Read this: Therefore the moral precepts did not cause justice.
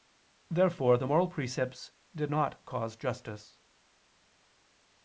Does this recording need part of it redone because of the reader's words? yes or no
no